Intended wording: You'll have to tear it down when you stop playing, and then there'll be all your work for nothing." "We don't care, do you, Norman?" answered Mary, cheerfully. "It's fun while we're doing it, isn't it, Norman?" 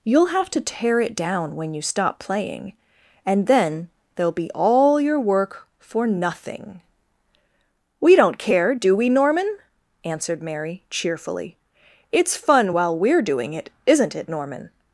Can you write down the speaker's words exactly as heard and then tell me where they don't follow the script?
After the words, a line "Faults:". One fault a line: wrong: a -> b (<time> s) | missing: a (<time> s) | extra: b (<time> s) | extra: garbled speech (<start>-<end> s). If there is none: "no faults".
You'll have to tear it down when you stop playing, and then there'll be all your work for nothing." "We don't care, do we, Norman?" answered Mary, cheerfully. "It's fun while we're doing it, isn't it, Norman?"
Faults:
wrong: you -> we (8.9 s)